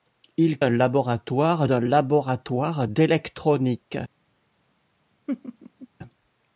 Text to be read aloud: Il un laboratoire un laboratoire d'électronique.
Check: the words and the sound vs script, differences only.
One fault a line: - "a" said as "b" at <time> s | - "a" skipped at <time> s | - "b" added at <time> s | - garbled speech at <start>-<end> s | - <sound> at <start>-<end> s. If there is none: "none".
- laugh at 5.3-5.9 s